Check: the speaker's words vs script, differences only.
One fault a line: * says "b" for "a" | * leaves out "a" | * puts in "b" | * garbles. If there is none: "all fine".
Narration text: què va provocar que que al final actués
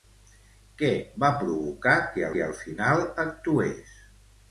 all fine